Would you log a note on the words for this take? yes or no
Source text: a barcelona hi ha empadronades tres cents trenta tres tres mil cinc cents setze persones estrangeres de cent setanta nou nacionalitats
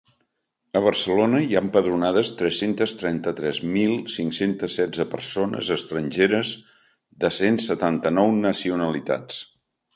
yes